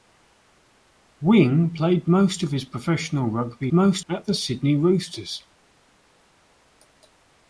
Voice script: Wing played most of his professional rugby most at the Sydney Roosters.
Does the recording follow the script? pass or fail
pass